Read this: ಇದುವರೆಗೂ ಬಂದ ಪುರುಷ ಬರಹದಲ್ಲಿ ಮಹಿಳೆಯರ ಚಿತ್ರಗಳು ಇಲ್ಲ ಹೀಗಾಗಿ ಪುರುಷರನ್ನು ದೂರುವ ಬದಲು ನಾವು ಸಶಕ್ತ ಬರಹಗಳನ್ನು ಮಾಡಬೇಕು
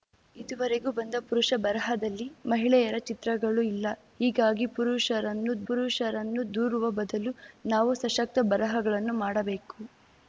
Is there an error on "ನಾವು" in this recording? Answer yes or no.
no